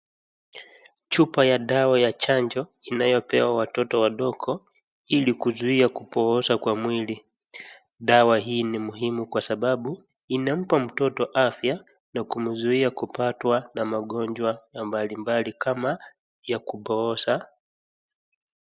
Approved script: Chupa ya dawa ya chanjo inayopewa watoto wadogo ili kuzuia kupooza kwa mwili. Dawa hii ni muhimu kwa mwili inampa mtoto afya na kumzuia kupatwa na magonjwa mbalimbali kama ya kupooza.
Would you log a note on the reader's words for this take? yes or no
yes